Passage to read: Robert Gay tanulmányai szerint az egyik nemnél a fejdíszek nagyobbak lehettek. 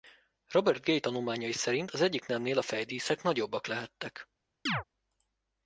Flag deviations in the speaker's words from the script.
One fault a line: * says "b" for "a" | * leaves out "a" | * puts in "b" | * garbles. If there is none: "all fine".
all fine